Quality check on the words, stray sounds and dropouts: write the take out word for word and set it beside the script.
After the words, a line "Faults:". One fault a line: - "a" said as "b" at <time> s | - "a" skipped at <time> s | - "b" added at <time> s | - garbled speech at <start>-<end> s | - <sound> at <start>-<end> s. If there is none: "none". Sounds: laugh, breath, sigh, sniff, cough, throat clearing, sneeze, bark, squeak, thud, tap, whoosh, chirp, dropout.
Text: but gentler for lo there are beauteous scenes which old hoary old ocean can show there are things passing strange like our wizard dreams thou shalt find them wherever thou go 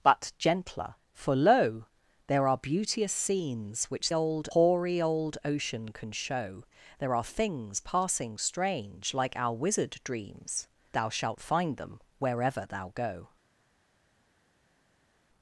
but gentler for lo there are beauteous scenes which old hoary old ocean can show there are things passing strange like our wizard dreams thou shalt find them wherever thou go
Faults:
none